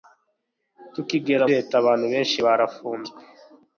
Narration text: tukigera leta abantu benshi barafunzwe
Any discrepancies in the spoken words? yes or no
no